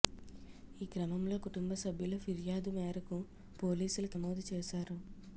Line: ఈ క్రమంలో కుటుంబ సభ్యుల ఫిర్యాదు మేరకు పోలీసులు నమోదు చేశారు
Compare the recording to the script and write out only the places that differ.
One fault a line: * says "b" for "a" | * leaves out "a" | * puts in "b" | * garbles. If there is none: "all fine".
all fine